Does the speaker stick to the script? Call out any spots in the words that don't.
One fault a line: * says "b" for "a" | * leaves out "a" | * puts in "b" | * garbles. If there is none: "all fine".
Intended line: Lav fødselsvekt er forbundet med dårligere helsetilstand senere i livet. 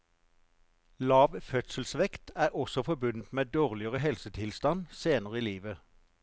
* puts in "også"